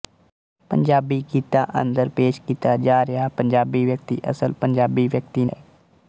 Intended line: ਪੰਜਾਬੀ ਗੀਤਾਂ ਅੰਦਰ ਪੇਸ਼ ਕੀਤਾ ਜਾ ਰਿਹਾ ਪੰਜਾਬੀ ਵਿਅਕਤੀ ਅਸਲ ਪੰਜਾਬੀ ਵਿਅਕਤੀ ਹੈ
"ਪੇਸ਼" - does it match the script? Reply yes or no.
yes